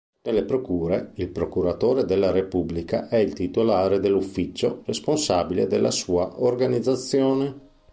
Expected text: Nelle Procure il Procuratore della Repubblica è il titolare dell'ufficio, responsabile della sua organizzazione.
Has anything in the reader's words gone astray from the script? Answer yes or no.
no